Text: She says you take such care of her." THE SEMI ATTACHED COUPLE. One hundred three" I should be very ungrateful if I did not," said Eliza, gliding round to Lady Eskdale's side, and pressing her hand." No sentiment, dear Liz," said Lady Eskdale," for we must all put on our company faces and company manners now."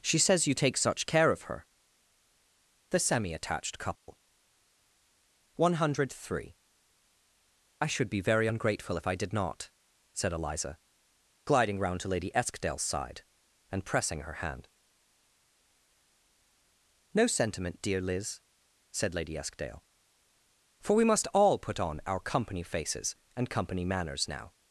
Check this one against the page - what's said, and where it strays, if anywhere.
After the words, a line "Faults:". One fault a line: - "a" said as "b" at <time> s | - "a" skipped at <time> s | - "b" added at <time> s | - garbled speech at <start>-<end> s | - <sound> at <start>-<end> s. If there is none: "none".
She says you take such care of her." THE SEMI ATTACHED COUPLE. One hundred three" I should be very ungrateful if I did not," said Eliza, gliding round to Lady Eskdale's side, and pressing her hand." No sentiment, dear Liz," said Lady Eskdale," for we must all put on our company faces and company manners now."
Faults:
- dropout at 4.0-4.1 s